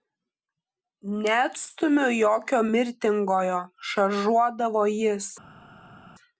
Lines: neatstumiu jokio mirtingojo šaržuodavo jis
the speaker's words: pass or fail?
pass